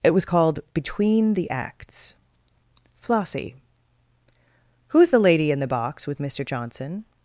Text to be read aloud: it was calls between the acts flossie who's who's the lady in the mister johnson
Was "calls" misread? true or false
true